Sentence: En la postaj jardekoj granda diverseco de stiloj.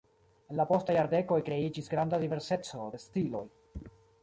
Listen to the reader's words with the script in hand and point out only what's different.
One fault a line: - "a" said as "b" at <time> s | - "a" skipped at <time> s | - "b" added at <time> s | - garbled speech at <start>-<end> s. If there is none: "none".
- "kreiĝis" added at 1.5 s